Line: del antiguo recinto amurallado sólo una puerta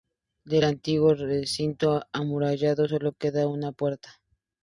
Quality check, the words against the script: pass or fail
fail